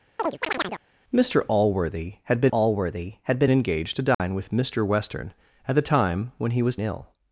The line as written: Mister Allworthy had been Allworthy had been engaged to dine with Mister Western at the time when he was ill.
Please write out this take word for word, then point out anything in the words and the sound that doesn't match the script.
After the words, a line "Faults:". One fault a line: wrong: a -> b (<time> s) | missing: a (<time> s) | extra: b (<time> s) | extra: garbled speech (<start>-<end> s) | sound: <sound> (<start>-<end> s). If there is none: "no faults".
Mister Allworthy had been Allworthy had been engaged to dine with Mister Western at the time when he was ill.
Faults:
sound: chirp (0.2-0.8 s)
sound: dropout (4.1-4.2 s)